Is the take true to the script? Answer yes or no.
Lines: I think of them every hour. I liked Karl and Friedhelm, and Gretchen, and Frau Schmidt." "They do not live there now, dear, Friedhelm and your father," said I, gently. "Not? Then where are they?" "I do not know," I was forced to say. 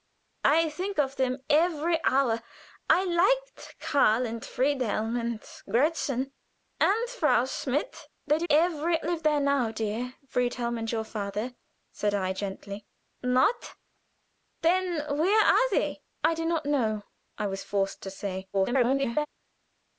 no